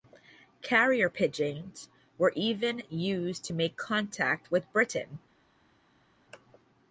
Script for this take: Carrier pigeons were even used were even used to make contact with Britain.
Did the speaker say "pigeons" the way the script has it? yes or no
yes